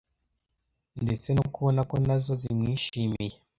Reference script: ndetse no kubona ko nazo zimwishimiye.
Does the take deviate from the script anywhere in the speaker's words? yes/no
no